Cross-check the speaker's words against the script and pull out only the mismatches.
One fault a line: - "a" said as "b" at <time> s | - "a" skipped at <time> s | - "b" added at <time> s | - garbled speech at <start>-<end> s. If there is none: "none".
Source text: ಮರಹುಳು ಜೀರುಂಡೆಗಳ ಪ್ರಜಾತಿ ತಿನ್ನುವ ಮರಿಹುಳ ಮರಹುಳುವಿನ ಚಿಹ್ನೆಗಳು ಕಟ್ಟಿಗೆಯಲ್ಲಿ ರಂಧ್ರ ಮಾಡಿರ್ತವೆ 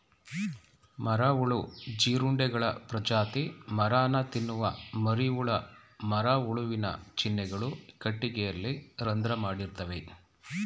- "ಮರನ" added at 3.7 s